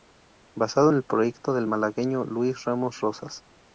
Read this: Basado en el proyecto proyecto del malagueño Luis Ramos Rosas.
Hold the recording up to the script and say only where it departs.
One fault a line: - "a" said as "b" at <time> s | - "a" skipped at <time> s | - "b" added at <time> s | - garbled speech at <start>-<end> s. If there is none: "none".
- "proyecto" skipped at 1.5 s